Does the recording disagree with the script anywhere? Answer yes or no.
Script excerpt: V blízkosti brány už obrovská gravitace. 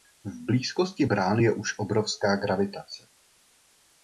yes